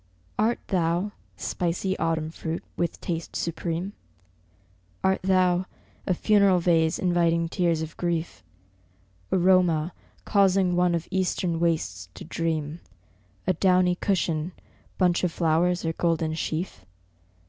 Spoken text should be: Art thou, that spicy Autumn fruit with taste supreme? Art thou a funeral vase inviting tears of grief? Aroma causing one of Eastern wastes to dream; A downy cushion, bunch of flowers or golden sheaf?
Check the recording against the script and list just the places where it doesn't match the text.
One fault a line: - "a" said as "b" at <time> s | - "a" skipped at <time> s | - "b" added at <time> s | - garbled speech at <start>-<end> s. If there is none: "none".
- "that" skipped at 1.1 s